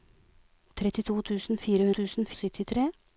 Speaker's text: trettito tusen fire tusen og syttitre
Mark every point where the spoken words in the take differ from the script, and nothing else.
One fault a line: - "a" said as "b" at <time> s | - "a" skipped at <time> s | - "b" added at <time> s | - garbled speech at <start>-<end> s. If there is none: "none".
none